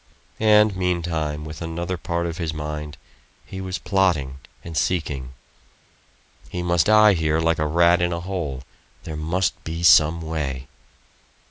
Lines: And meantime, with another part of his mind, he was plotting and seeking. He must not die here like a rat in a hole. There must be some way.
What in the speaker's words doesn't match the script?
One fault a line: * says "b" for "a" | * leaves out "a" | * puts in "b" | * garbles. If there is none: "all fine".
* leaves out "not"